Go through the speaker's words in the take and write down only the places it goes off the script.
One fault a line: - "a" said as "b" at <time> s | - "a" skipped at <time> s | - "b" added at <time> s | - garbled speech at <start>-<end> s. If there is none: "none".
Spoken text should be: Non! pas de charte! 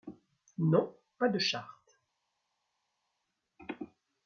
none